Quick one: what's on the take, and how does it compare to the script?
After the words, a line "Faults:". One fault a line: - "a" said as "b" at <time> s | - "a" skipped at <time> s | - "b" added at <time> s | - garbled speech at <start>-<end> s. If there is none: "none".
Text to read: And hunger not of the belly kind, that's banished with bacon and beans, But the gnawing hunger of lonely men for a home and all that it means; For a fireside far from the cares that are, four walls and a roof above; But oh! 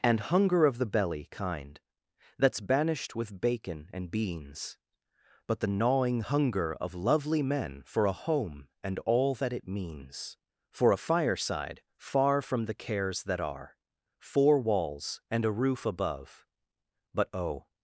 And hunger of the belly kind, that's banished with bacon and beans, But the gnawing hunger of lovely men for a home and all that it means; For a fireside far from the cares that are, four walls and a roof above; But oh!
Faults:
- "not" skipped at 0.7 s
- "lonely" said as "lovely" at 6.9 s